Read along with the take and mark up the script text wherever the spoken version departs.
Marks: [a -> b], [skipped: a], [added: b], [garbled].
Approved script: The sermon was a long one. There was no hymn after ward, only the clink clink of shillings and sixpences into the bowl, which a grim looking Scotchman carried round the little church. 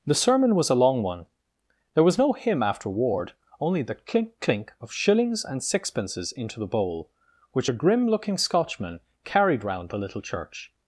The sermon was a long one. There was no hymn after ward, only the clink clink of shillings and sixpences into the bowl, which a grim looking Scotchman carried round the little church.